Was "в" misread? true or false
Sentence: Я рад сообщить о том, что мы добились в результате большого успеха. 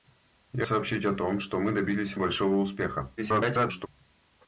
true